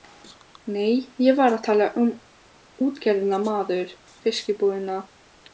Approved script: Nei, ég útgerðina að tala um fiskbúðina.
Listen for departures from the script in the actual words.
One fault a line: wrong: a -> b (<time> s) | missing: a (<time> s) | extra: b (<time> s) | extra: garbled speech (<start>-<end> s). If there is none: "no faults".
wrong: útgerðina -> var (1.4 s)
extra: útgerðina maður (2.9 s)